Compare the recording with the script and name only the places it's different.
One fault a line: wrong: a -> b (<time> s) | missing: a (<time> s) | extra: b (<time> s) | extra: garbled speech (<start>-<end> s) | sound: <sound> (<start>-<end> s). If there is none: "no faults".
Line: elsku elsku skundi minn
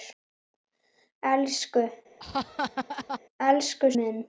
sound: laugh (2.2-3.2 s)
missing: skundi (3.9 s)